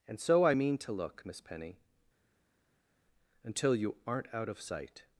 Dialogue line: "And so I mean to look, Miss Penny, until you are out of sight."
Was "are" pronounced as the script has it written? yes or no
no